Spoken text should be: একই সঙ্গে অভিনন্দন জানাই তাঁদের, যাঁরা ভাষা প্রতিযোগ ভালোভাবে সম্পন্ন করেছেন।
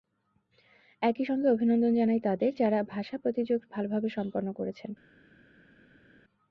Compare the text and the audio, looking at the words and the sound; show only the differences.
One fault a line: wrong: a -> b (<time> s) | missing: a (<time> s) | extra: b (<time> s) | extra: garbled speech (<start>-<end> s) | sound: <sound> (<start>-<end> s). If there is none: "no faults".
no faults